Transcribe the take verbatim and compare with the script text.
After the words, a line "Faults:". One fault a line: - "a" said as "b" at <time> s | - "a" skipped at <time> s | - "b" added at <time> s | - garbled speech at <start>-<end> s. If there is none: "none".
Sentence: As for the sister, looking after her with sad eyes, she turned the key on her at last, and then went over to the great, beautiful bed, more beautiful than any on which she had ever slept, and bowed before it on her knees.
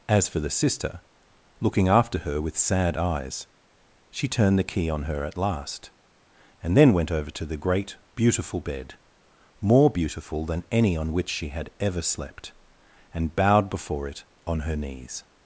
As for the sister, looking after her with sad eyes, she turned the key on her at last, and then went over to the great, beautiful bed, more beautiful than any on which she had ever slept, and bowed before it on her knees.
Faults:
none